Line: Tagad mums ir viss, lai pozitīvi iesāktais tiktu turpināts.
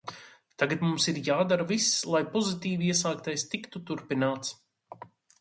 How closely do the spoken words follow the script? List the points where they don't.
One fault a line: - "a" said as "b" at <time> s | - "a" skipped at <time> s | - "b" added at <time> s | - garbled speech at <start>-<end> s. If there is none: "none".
- "jādara" added at 1.3 s